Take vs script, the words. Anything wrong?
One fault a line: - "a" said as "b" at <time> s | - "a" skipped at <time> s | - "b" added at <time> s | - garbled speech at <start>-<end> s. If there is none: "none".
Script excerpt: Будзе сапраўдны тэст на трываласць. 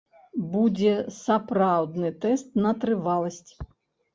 none